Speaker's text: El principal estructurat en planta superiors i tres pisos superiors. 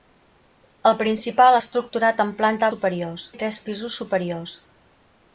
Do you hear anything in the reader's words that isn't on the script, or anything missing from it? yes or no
no